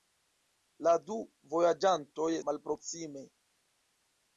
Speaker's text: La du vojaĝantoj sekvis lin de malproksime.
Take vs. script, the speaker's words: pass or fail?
fail